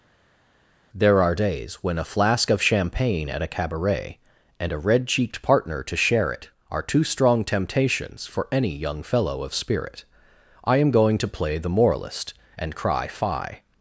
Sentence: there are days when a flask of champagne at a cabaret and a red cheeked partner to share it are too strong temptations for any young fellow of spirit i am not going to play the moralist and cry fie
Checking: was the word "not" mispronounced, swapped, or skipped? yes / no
yes